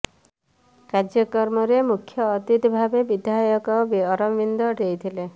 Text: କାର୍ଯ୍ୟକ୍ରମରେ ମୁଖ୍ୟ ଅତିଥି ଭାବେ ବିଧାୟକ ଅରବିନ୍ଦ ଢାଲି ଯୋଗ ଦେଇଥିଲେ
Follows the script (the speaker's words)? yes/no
no